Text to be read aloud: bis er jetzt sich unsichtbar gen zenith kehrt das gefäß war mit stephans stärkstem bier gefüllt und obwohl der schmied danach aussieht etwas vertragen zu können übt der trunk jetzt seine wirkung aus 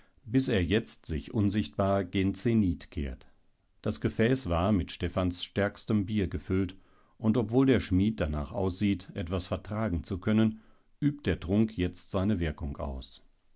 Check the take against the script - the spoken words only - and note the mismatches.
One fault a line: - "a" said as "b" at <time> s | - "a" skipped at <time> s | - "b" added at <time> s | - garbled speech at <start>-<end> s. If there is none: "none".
none